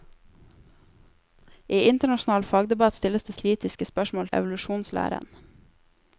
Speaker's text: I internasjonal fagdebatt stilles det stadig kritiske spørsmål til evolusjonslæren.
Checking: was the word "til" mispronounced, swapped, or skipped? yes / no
yes